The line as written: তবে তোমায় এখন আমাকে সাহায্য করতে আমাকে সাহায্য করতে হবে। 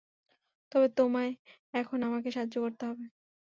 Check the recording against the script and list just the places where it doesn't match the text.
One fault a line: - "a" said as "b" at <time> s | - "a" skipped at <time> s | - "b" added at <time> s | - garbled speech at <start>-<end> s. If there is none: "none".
- "আমাকে সাহায্য করতে" skipped at 2.8 s